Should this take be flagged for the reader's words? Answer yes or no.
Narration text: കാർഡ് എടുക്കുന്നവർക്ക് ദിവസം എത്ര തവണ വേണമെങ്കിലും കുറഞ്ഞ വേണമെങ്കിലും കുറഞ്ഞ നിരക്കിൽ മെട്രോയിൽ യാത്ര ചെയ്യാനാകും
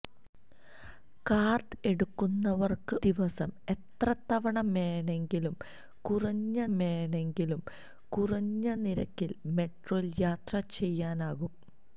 no